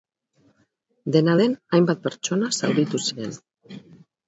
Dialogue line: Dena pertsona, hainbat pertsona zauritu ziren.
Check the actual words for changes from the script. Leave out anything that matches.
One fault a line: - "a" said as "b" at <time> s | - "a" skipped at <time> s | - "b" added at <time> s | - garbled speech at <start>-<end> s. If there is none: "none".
- "pertsona" said as "den" at 1.4 s